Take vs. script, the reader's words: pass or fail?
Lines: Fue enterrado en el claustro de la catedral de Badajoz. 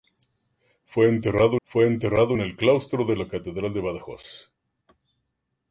fail